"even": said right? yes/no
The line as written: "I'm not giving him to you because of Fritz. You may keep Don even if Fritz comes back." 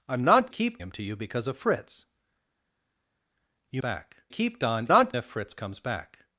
no